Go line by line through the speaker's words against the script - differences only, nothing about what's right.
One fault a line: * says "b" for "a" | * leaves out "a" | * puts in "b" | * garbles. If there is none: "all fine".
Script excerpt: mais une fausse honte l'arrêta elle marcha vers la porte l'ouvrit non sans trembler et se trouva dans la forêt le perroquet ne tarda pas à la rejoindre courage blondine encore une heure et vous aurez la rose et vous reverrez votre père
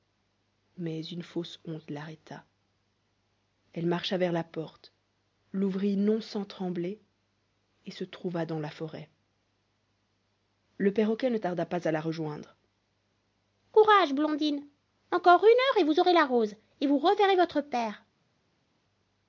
all fine